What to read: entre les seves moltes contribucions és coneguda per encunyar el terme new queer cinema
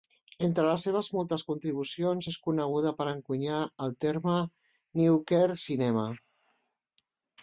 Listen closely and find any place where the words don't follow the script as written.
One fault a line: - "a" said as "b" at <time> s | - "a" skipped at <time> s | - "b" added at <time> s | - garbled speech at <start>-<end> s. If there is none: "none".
none